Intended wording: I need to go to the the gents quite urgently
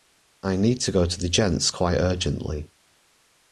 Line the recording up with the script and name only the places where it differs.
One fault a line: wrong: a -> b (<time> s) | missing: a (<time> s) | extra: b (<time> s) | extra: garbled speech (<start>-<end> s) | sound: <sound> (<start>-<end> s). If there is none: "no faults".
missing: the (1.3 s)